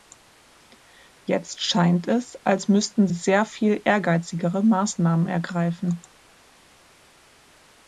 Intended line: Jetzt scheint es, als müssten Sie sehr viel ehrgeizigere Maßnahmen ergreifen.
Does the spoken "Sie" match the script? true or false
false